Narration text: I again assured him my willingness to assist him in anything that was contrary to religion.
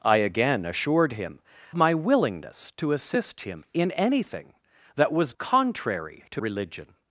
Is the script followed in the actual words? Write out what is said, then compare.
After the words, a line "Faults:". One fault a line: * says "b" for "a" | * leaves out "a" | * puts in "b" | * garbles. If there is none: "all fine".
I again assured him my willingness to assist him in anything that was contrary to religion.
Faults:
all fine